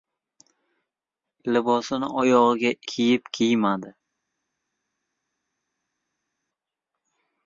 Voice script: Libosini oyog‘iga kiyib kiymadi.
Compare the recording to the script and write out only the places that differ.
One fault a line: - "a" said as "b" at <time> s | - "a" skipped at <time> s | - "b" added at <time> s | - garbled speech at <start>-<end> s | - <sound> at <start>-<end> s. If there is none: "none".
none